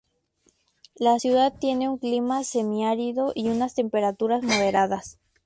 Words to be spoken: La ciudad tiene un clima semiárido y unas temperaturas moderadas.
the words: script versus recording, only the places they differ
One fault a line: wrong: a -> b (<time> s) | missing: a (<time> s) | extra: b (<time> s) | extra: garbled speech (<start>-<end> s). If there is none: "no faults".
no faults